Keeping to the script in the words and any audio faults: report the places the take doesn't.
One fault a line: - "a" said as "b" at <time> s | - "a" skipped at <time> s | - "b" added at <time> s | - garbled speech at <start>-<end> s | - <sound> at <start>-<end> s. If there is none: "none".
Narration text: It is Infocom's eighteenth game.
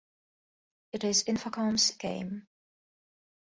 - "eighteenth" skipped at 1.9 s